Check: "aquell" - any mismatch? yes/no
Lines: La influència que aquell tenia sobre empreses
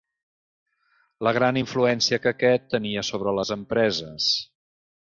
yes